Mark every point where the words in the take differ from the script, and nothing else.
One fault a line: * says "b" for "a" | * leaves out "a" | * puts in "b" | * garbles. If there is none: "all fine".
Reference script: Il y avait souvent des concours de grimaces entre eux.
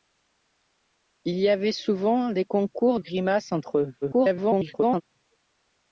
* leaves out "de"
* garbles